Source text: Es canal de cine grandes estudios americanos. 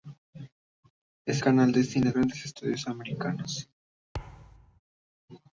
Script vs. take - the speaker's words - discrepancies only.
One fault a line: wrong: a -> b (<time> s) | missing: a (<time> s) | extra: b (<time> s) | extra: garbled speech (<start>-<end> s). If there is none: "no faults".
no faults